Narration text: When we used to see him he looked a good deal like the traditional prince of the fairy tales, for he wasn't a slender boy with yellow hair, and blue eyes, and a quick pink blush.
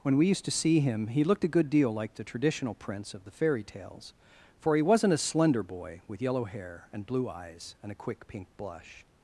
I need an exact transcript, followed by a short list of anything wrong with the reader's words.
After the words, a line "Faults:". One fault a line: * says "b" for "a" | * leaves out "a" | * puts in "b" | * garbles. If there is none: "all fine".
When we used to see him he looked a good deal like the traditional prince of the fairy tales, for he wasn't a slender boy with yellow hair, and blue eyes, and a quick pink blush.
Faults:
all fine